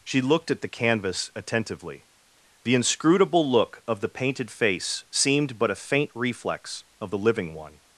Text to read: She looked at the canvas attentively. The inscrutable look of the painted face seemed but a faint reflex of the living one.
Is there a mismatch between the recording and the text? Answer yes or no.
no